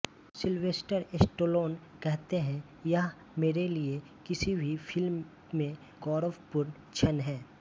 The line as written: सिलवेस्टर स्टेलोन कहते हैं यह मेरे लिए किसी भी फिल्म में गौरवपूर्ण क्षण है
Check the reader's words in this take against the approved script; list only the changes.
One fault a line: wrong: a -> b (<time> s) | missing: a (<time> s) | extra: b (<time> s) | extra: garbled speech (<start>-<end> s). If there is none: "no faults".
no faults